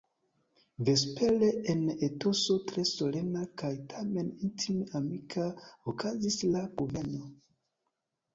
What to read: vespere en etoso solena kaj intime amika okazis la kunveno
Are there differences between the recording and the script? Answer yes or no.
yes